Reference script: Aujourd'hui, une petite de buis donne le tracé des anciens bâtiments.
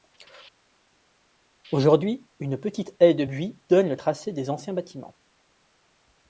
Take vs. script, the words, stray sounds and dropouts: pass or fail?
fail